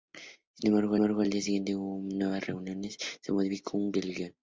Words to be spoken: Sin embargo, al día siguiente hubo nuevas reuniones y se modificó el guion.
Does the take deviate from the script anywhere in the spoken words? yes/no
yes